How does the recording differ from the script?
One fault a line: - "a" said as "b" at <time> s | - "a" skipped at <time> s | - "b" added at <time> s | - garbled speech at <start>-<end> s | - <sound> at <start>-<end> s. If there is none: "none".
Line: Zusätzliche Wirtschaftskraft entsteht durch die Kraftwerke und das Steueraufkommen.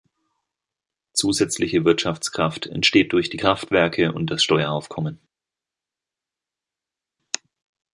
none